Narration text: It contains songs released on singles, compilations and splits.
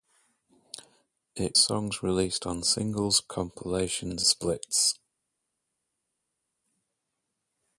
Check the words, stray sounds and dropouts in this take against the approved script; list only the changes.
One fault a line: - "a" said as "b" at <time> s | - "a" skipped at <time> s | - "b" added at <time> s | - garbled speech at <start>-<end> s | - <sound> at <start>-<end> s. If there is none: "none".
- "contains" skipped at 1.6 s
- "and" skipped at 4.2 s